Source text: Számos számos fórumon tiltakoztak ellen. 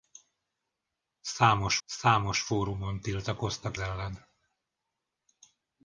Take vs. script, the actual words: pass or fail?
pass